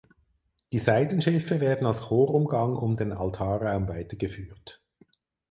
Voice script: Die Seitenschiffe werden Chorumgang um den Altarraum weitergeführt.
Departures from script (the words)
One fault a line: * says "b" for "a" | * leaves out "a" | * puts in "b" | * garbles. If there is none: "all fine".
* puts in "als"